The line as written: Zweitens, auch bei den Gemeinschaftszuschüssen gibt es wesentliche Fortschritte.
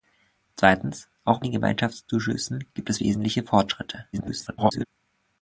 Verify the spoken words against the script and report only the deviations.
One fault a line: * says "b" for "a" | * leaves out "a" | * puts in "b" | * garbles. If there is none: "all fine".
* leaves out "bei"
* garbles